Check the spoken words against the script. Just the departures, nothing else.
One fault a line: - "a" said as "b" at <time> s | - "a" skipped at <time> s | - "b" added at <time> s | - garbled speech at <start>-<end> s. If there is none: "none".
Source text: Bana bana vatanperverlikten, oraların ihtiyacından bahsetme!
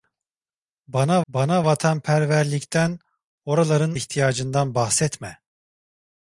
none